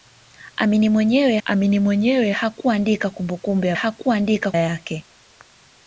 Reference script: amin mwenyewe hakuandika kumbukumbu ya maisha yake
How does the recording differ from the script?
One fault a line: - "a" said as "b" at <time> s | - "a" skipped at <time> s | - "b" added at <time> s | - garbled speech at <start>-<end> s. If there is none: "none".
- "amin mwenyewe" added at 1.4 s
- "maisha" said as "hakuandika" at 3.7 s